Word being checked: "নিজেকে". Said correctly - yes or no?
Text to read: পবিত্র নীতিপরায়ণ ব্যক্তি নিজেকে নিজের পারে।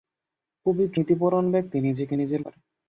yes